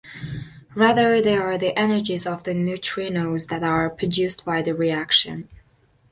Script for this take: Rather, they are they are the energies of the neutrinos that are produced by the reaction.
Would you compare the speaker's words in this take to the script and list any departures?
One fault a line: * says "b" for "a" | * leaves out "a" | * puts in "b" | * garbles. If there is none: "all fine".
* leaves out "they are"